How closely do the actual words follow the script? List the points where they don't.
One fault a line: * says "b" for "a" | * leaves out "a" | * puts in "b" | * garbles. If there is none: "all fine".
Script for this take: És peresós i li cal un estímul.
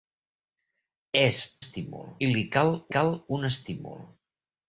* says "estímul" for "peresós"
* puts in "cal"